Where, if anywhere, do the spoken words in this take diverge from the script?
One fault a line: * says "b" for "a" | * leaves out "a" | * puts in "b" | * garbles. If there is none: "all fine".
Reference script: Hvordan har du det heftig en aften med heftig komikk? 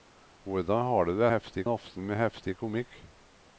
all fine